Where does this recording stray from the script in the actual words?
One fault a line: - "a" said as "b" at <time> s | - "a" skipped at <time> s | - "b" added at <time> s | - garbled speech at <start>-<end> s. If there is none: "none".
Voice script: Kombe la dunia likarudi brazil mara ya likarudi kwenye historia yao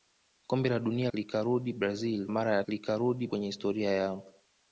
none